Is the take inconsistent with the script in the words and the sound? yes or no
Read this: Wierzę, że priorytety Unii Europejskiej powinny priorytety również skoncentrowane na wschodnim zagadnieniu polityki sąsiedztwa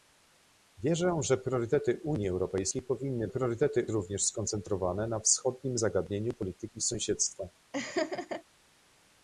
yes